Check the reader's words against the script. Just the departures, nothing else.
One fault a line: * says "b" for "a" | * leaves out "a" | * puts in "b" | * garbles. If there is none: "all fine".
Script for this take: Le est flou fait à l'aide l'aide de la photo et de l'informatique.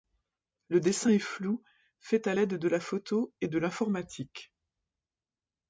* puts in "dessin"
* leaves out "l'aide"